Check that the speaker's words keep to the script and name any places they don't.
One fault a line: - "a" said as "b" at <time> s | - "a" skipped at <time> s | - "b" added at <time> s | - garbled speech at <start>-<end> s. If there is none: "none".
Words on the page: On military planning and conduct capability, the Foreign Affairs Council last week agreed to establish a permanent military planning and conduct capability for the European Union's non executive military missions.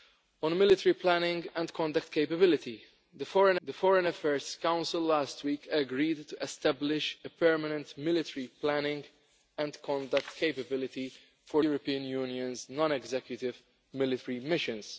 - "the Foreign" added at 3.6 s
- "the" skipped at 11.6 s